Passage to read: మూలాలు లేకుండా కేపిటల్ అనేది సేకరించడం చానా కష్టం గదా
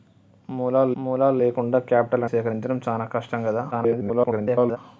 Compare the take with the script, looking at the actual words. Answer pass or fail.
fail